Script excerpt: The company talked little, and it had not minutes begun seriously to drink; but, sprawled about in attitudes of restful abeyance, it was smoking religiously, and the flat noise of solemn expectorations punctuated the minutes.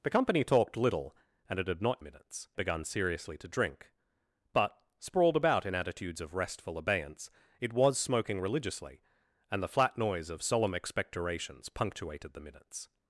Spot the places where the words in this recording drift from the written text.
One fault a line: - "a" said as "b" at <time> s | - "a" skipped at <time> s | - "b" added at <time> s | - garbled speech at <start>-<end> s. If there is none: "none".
none